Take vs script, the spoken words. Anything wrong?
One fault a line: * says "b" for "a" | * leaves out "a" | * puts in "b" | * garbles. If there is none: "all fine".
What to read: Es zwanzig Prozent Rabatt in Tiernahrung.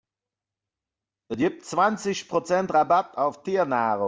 * puts in "gibt"
* says "auf" for "in"